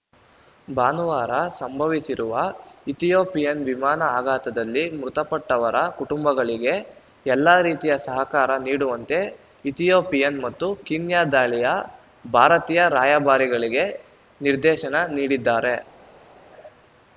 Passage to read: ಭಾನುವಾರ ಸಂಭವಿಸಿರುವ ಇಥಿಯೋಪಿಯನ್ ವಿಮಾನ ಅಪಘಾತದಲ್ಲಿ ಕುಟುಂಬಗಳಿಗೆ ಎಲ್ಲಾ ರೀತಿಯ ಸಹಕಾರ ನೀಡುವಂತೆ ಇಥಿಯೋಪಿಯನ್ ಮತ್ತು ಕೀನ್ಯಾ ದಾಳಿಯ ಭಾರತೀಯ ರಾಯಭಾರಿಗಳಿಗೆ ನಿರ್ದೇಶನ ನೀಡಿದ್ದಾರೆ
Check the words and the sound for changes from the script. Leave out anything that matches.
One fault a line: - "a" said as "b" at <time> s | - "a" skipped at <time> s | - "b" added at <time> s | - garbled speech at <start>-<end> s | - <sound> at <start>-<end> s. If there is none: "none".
- "ಮೃತಪಟ್ಟವರ" added at 5.0 s